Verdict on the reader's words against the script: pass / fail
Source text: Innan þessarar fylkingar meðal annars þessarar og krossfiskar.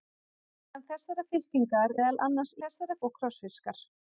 pass